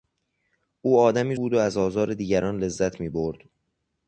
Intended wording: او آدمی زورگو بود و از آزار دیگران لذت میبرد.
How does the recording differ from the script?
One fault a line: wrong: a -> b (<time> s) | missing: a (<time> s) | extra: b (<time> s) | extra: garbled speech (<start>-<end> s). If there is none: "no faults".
missing: زورگو (1.4 s)